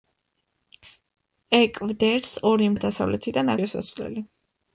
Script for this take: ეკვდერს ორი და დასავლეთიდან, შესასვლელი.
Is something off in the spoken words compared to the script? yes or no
no